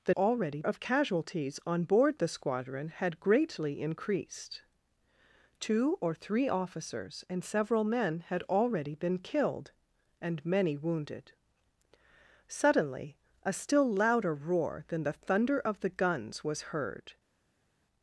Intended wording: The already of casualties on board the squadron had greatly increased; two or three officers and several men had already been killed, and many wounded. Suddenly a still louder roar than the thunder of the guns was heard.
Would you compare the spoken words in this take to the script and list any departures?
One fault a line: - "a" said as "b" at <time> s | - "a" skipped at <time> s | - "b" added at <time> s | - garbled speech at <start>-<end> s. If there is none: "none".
none